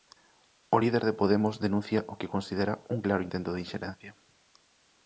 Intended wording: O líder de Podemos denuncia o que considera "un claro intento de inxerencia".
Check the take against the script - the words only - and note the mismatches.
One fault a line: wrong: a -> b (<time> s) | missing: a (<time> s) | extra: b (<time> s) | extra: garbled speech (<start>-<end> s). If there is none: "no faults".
no faults